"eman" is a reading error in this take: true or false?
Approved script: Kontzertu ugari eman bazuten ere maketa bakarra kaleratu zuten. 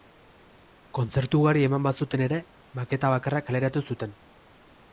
false